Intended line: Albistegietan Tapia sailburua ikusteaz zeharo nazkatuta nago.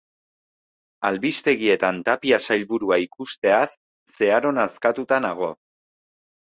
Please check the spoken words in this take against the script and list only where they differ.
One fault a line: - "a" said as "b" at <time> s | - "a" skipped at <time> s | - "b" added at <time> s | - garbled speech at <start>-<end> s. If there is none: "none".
none